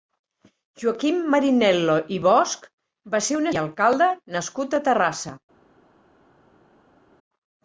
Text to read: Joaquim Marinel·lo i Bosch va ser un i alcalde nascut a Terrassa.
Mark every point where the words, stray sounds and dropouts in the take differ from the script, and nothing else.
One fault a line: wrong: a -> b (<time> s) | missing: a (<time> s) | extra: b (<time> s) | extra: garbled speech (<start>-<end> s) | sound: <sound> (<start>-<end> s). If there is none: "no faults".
no faults